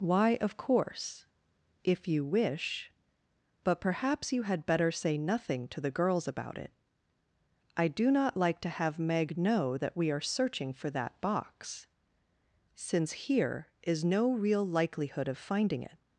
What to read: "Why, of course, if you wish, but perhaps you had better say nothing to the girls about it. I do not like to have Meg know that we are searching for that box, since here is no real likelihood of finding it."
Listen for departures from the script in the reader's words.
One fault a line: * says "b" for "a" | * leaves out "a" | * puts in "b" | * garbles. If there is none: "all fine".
all fine